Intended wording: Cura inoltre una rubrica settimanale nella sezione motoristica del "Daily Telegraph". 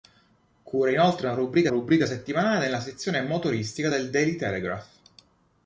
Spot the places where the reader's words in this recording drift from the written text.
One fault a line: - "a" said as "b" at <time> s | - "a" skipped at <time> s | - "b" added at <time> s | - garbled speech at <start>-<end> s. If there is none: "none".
- "rubrica" added at 1.7 s